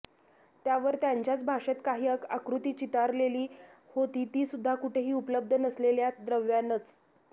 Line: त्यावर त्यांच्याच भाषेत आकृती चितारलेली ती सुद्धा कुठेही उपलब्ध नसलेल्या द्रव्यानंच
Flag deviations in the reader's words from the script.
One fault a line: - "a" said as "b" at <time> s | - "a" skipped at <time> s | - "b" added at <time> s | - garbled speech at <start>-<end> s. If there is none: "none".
- "काही" added at 1.9 s
- "होती" added at 4.0 s